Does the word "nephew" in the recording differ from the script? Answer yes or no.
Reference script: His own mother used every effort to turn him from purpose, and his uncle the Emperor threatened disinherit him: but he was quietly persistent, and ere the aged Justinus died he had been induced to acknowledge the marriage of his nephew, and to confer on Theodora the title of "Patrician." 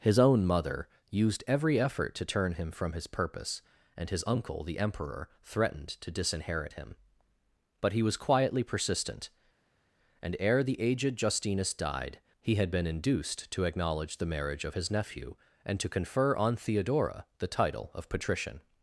no